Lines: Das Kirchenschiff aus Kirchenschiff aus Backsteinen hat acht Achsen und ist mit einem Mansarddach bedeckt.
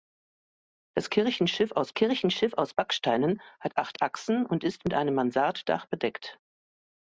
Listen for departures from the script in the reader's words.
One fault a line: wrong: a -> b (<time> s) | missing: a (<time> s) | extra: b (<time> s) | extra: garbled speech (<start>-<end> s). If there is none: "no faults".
no faults